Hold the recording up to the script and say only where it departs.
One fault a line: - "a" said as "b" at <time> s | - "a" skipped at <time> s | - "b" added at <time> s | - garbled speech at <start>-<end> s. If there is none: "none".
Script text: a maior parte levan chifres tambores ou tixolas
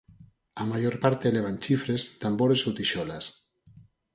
none